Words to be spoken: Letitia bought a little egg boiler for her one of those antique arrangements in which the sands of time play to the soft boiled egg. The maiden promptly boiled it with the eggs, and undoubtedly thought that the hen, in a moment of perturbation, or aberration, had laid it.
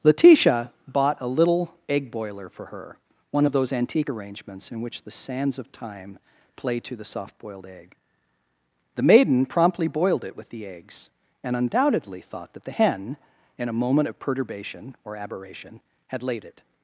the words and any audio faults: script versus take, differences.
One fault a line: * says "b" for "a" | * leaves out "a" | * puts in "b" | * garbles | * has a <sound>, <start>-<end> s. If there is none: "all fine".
all fine